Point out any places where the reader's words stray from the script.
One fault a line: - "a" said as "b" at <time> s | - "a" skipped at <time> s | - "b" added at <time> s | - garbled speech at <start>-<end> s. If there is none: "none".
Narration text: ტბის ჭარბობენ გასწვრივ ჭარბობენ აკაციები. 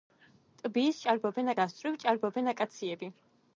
none